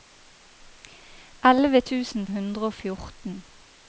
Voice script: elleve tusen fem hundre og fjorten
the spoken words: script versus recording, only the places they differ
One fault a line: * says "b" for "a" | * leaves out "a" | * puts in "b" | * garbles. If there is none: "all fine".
* leaves out "fem"